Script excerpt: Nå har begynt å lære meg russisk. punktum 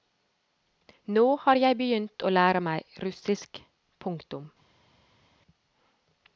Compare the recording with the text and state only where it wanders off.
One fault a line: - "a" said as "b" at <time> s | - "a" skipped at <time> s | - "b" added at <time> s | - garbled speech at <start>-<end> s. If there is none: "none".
- "jeg" added at 1.6 s